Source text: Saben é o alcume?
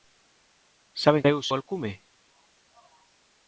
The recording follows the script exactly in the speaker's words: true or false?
true